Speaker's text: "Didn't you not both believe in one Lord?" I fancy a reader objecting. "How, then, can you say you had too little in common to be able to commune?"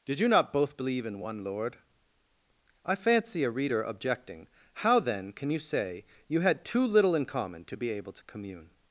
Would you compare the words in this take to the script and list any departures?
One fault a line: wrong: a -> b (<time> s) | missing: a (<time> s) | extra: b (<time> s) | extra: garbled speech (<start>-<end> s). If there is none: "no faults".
wrong: Didn't -> Did (0.0 s)